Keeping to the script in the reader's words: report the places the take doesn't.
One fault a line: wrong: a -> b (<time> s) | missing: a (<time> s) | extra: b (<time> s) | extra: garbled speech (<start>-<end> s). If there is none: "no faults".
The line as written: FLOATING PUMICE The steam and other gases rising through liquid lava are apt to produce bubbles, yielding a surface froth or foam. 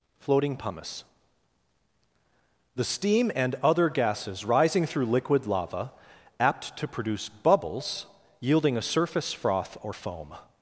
missing: are (5.9 s)